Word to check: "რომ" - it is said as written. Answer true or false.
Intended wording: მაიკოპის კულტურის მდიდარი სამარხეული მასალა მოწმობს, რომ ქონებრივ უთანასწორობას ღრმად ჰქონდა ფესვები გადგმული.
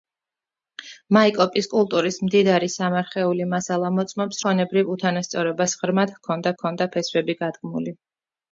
false